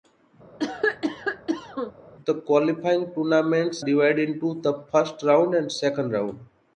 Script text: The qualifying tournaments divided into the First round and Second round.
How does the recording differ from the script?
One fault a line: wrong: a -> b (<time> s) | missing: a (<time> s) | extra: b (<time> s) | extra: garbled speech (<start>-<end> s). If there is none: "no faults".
no faults